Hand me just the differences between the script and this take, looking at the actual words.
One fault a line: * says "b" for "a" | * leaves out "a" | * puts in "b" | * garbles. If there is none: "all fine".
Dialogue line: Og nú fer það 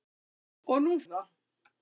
* leaves out "fer"